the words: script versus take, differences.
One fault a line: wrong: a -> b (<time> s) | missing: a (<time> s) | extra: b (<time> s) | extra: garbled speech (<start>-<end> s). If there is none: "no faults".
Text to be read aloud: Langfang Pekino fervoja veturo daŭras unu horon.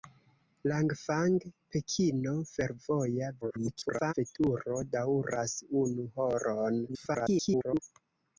extra: garbled speech (3.4-4.1 s)
extra: garbled speech (6.9-7.8 s)